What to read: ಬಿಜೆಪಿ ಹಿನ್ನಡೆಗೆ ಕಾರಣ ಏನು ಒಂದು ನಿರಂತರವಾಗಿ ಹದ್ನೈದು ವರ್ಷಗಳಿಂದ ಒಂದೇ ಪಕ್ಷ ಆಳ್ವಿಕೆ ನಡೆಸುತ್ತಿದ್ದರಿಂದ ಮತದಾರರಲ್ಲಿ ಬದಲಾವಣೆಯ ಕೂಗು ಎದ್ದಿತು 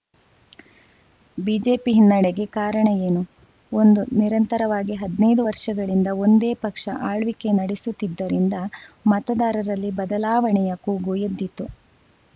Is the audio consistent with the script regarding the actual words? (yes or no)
yes